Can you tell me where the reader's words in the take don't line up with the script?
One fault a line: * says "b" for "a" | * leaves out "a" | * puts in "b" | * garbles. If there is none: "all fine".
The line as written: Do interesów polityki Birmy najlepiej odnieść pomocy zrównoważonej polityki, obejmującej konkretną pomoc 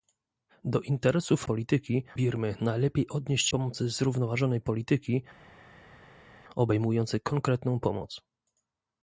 all fine